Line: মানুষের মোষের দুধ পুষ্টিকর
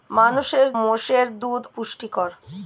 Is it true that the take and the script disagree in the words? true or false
false